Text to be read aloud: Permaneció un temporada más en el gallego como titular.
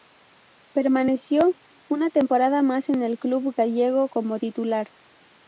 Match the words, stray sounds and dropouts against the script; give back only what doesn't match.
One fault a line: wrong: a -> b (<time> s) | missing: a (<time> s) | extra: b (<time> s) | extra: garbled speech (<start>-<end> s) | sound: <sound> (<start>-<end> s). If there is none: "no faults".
wrong: un -> una (1.9 s)
extra: club (3.2 s)